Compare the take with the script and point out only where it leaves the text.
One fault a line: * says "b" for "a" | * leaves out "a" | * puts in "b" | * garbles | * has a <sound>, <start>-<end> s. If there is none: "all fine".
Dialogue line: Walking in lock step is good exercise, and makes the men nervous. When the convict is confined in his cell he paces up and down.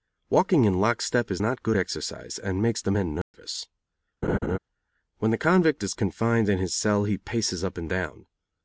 * puts in "not"
* has a dropout, 3.2-3.3 s
* has a laugh, 4.2-4.6 s